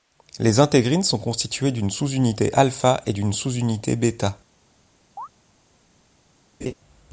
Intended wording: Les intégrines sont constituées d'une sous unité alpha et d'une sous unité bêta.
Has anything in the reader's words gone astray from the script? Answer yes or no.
no